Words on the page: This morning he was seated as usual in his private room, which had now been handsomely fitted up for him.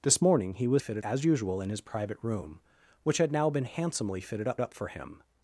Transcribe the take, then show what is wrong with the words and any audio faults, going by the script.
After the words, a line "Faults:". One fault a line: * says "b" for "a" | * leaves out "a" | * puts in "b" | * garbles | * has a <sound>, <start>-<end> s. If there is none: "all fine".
This morning he was fitted as usual in his private room, which had now been handsomely fitted up up for him.
Faults:
* says "fitted" for "seated"
* puts in "up"